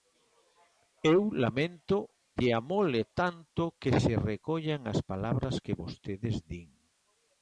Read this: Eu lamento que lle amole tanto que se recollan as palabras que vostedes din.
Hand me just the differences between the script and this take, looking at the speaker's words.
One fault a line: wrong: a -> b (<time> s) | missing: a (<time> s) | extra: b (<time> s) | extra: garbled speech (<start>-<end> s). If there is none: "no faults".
missing: que (2.0 s)